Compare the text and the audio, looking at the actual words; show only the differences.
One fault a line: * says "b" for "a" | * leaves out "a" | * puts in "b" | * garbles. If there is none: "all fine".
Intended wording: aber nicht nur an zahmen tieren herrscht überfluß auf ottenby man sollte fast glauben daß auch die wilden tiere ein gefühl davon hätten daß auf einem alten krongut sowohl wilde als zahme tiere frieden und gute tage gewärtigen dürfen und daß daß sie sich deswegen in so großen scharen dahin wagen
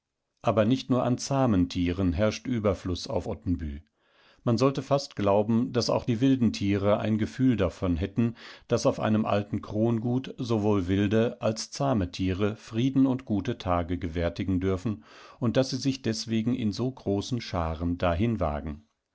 * leaves out "daß"